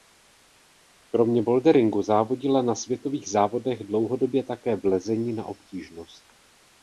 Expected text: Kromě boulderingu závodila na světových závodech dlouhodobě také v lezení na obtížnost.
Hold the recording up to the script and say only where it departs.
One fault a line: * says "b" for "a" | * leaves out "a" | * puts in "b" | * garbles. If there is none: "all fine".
all fine